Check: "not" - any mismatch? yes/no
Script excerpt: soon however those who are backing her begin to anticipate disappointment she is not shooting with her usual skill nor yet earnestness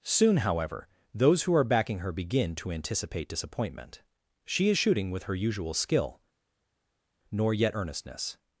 yes